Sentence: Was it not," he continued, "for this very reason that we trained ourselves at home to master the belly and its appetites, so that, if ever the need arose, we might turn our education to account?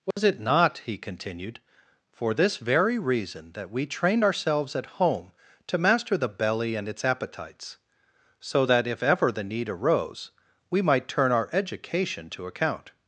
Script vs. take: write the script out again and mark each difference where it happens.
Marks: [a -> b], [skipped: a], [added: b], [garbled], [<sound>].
Was [dropout] it not," he continued, "for this very reason that we trained ourselves at home to master the belly and its appetites, so that, if ever the need arose, we might turn our education to account?